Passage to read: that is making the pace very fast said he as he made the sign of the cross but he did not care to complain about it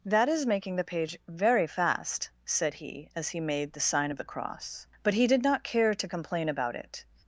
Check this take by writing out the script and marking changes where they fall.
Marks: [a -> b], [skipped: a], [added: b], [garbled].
that is making the [pace -> page] very fast said he as he made the sign of the cross but he did not care to complain about it